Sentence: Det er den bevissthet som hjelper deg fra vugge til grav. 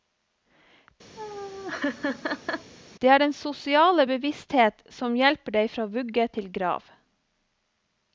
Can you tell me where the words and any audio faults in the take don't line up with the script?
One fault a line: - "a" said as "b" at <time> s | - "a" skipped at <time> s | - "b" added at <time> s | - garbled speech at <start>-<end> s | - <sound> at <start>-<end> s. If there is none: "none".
- laugh at 1.2-2.7 s
- "sosiale" added at 3.4 s